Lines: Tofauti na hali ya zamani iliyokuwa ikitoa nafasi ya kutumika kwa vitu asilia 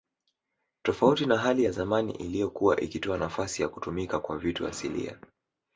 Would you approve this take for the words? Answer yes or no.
yes